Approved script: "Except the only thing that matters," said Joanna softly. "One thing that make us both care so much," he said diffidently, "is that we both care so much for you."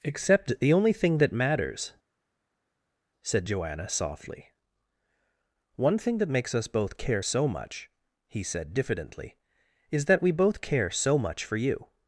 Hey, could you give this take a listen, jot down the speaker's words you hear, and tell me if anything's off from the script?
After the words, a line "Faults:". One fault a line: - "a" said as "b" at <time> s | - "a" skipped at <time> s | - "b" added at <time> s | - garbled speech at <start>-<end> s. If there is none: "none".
"Except the only thing that matters," said Joanna softly. "One thing that makes us both care so much," he said diffidently, "is that we both care so much for you."
Faults:
- "make" said as "makes" at 6.3 s